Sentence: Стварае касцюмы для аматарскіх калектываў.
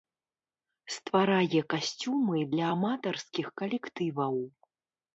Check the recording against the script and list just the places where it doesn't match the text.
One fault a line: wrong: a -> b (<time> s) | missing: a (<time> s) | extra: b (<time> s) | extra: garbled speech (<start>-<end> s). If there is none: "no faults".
no faults